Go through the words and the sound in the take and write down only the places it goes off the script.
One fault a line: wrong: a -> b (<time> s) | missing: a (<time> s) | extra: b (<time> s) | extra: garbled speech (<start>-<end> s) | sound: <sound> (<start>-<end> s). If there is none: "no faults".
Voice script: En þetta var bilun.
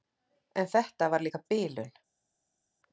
extra: líka (1.2 s)